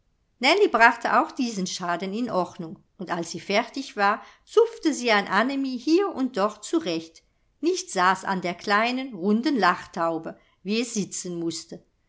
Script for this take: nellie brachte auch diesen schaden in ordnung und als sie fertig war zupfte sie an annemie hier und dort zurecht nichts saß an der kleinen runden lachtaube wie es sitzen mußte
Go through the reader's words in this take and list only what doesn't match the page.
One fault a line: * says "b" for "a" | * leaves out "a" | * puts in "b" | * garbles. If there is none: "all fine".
all fine